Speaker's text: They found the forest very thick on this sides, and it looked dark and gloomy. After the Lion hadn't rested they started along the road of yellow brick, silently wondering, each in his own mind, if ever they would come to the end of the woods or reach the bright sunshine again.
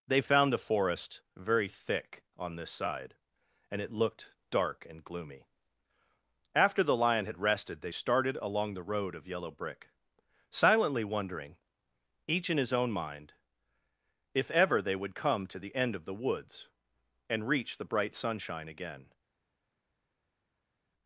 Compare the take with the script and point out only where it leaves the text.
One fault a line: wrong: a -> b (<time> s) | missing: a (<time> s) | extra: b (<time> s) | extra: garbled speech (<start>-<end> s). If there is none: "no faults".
wrong: sides -> side (2.7 s)
wrong: hadn't -> had (7.2 s)
wrong: or -> and (17.3 s)